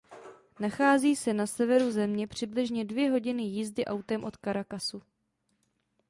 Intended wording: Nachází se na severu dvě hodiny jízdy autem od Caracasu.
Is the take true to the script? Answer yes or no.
no